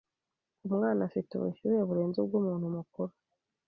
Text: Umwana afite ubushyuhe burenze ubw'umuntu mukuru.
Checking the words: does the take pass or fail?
pass